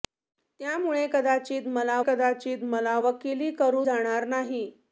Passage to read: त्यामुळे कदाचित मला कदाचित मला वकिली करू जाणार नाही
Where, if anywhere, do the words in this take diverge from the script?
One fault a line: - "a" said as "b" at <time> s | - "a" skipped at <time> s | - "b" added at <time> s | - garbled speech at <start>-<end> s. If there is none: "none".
none